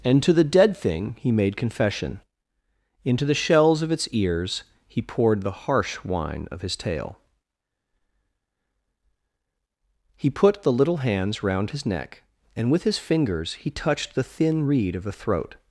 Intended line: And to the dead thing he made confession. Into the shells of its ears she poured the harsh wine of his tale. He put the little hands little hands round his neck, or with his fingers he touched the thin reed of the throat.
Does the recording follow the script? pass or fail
fail